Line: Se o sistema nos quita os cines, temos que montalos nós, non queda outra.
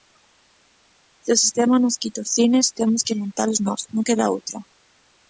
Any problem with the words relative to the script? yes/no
no